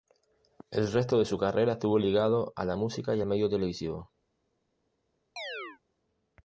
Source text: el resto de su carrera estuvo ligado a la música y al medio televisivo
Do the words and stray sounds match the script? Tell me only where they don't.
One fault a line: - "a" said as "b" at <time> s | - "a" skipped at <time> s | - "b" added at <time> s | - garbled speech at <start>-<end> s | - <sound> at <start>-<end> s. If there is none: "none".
- chirp at 5.4-5.8 s